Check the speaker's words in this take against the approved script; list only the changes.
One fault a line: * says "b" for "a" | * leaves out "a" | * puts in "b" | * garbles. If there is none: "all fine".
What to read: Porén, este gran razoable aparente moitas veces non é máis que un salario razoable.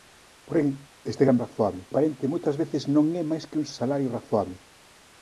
all fine